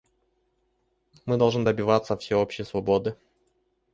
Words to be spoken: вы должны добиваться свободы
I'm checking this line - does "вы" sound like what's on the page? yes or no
no